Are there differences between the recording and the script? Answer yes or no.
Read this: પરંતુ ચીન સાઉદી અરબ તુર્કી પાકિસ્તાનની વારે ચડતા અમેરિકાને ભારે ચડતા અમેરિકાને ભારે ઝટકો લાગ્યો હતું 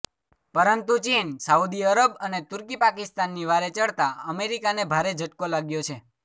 yes